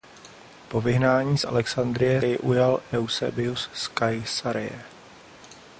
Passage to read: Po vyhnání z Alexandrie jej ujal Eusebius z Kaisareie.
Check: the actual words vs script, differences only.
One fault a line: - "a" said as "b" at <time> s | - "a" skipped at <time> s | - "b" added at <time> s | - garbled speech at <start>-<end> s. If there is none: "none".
none